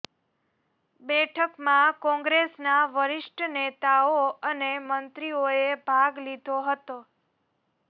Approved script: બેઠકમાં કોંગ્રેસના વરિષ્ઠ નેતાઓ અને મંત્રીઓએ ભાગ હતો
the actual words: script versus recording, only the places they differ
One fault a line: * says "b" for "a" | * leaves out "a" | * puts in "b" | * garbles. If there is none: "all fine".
* puts in "લીધો"